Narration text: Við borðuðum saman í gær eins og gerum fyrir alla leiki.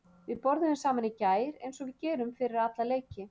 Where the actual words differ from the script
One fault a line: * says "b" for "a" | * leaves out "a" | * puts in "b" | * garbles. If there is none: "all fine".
* puts in "við"